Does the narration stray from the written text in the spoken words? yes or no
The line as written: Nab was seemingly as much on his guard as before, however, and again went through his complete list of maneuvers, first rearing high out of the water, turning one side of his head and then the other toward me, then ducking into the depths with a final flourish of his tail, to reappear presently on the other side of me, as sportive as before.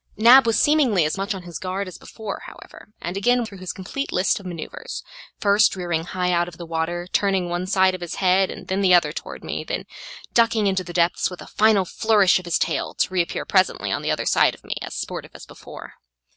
yes